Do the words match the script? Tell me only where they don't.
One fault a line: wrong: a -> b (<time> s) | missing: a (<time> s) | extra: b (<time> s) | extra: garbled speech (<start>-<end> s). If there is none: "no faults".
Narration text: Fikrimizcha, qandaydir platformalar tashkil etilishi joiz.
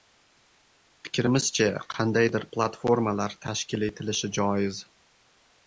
no faults